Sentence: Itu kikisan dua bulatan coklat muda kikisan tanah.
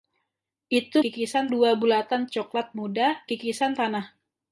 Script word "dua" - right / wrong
right